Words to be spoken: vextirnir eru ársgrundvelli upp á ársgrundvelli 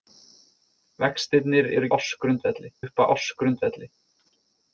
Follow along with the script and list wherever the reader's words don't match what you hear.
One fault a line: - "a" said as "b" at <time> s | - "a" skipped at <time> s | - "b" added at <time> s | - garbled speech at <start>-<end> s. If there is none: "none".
none